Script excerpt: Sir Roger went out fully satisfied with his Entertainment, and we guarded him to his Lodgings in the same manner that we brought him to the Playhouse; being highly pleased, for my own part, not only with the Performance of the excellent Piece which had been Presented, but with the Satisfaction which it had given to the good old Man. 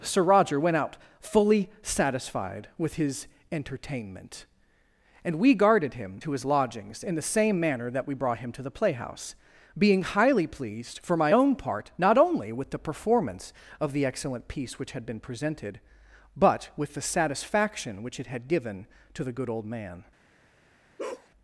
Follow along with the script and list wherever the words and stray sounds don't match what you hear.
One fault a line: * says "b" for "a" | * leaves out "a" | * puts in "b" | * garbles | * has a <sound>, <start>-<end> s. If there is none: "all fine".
* has a bark, 21.0-21.3 s